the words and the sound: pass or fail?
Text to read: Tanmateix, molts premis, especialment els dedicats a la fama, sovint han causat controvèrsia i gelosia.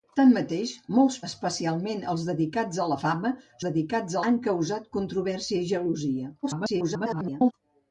fail